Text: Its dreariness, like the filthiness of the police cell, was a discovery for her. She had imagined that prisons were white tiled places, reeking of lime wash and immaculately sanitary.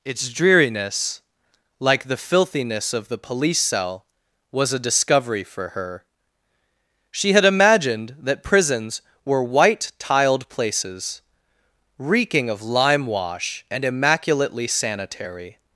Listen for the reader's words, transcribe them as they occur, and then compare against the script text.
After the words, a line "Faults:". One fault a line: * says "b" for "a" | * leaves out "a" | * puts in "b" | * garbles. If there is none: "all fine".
Its dreariness, like the filthiness of the police cell, was a discovery for her. She had imagined that prisons were white tiled places, reeking of lime wash and immaculately sanitary.
Faults:
all fine